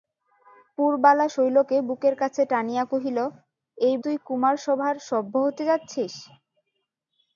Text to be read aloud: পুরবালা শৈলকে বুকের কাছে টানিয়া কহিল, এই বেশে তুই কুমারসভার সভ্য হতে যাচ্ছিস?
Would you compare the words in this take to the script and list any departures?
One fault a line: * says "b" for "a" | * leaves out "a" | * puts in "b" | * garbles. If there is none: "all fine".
* leaves out "বেশে"